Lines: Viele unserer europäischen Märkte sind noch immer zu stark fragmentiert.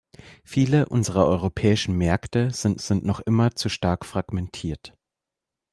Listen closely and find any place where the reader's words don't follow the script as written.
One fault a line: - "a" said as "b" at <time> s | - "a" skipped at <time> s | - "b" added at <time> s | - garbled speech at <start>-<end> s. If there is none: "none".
- "sind" added at 2.7 s